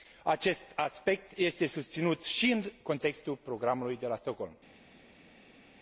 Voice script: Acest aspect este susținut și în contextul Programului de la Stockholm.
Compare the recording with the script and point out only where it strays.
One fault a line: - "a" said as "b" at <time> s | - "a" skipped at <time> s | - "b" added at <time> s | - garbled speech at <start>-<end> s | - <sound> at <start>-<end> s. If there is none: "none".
none